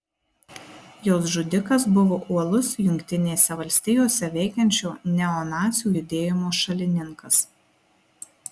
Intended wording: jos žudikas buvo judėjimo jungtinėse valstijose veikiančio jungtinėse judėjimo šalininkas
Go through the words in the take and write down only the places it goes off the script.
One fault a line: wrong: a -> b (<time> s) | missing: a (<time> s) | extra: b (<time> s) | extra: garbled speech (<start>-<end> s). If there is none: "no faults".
wrong: judėjimo -> uolus (2.4 s)
wrong: jungtinėse -> neonacių (5.2 s)